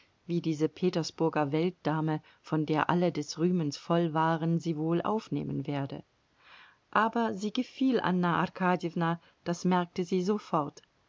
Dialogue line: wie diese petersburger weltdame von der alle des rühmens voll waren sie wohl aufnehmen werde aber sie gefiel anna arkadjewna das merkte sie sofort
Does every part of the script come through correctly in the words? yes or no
yes